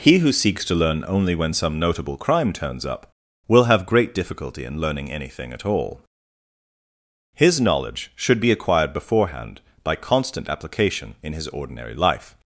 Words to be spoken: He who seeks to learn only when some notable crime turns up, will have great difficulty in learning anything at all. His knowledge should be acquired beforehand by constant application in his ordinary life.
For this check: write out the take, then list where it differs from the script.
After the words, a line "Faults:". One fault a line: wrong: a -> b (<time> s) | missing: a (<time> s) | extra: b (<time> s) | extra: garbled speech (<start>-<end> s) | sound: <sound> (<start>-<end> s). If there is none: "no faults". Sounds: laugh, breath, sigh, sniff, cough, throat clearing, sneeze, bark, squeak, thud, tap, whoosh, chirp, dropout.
He who seeks to learn only when some notable crime turns up, will have great difficulty in learning anything at all. His knowledge should be acquired beforehand by constant application in his ordinary life.
Faults:
no faults